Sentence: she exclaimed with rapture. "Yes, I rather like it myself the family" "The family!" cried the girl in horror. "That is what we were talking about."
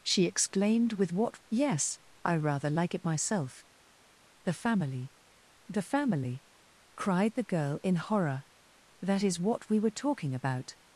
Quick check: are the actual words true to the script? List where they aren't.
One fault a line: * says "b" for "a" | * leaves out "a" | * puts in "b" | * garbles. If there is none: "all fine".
* says "what" for "rapture"